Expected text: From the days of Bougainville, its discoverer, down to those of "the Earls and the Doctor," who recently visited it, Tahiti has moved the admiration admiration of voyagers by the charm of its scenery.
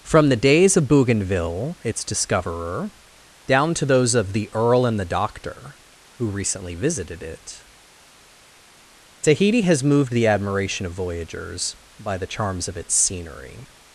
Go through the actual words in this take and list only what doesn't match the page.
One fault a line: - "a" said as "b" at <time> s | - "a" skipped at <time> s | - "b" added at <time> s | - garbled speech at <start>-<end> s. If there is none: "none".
- "Earls" said as "Earl" at 4.5 s
- "admiration" skipped at 10.8 s
- "charm" said as "charms" at 12.3 s